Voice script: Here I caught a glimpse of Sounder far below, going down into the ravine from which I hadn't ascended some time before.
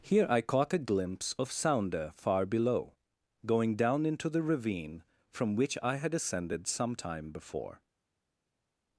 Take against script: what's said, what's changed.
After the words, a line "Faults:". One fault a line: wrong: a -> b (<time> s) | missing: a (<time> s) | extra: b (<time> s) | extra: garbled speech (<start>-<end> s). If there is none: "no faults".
Here I caught a glimpse of Sounder far below, going down into the ravine from which I had ascended some time before.
Faults:
wrong: hadn't -> had (6.0 s)